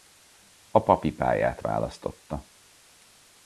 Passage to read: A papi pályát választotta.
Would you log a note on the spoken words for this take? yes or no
no